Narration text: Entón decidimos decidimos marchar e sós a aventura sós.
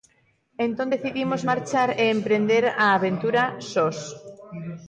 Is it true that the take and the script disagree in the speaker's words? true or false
true